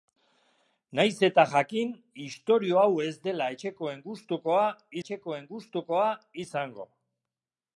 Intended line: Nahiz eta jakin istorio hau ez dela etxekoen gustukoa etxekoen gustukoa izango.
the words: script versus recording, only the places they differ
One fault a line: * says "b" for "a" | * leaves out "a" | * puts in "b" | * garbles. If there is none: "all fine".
all fine